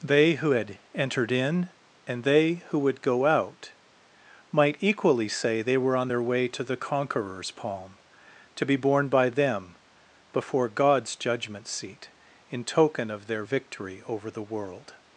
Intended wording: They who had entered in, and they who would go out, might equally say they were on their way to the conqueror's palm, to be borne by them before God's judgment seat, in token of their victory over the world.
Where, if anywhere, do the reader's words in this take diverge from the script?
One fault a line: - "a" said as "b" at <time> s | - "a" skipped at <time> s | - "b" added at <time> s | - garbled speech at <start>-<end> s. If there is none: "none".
none